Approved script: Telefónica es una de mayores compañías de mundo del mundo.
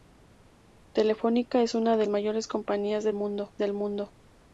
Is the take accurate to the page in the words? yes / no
yes